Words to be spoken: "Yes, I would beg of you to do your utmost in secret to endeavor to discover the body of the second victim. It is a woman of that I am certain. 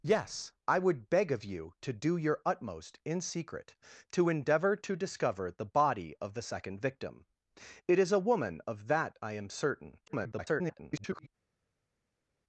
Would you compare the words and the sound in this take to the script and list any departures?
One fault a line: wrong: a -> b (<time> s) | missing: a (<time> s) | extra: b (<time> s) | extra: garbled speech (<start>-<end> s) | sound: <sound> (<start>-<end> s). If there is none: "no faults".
extra: garbled speech (10.1-11.3 s)